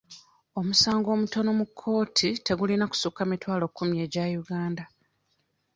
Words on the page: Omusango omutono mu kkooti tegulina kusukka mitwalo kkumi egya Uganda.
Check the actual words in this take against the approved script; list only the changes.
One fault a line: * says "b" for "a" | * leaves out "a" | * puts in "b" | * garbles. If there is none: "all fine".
all fine